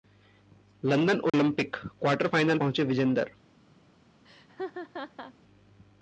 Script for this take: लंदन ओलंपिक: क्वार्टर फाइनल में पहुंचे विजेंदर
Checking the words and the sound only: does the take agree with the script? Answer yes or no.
no